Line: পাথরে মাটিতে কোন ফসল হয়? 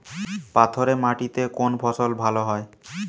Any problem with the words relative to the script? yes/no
yes